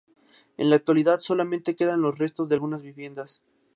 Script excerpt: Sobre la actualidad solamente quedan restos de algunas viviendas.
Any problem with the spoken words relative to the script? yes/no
yes